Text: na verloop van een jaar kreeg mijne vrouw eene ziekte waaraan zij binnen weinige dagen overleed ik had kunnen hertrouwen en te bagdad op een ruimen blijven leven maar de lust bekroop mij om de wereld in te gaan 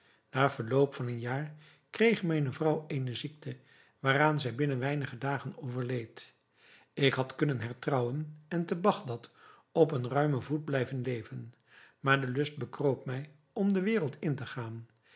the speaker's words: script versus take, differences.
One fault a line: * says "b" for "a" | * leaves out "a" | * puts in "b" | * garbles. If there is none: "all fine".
* puts in "voet"